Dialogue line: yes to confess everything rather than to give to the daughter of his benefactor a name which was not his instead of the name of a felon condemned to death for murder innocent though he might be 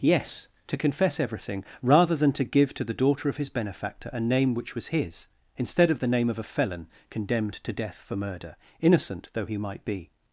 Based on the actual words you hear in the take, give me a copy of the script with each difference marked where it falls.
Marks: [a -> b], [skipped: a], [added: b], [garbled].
yes to confess everything rather than to give to the daughter of his benefactor a name which was [skipped: not] his instead of the name of a felon condemned to death for murder innocent though he might be